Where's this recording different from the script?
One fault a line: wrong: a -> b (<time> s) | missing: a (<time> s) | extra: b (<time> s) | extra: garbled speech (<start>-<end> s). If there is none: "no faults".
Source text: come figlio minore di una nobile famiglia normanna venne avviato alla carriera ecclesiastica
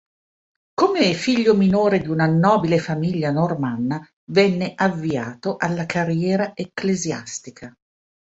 no faults